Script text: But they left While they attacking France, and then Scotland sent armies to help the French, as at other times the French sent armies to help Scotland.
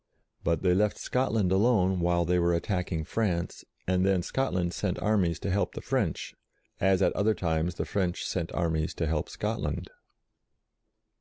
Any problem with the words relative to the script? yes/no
yes